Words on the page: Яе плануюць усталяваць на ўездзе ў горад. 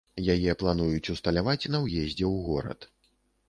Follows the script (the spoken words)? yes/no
yes